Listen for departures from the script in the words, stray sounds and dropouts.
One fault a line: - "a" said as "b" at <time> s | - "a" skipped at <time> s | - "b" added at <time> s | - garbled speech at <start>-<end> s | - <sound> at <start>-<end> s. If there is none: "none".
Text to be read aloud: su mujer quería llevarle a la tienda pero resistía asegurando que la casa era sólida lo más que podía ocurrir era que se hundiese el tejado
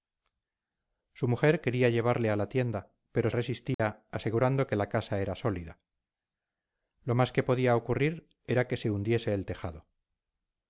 - dropout at 3.7-3.8 s